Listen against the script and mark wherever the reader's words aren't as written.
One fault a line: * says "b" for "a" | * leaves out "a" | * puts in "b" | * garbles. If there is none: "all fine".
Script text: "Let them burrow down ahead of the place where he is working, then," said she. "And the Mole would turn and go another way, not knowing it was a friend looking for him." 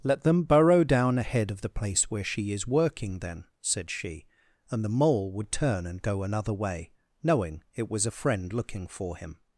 * says "she" for "he"
* leaves out "not"